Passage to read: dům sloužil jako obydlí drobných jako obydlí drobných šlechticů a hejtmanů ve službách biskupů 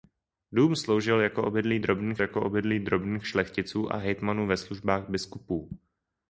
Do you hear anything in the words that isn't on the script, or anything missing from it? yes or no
no